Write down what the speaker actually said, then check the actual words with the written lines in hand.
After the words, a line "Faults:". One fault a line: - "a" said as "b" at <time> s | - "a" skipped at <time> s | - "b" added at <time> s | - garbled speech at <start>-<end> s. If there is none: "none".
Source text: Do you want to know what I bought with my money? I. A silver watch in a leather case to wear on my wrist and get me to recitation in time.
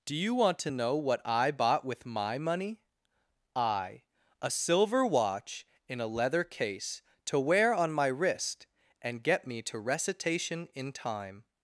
Do you want to know what I bought with my money? I. A silver watch in a leather case to wear on my wrist and get me to recitation in time.
Faults:
none